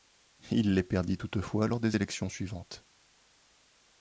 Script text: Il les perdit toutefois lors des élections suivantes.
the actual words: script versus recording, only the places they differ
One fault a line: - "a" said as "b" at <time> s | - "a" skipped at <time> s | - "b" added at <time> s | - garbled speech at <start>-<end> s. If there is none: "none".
none